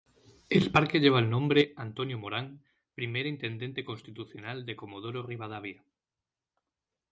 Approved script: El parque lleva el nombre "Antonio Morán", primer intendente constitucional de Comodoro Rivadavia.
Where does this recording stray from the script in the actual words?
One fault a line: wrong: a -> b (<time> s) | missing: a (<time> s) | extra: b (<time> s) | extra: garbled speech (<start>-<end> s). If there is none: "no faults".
no faults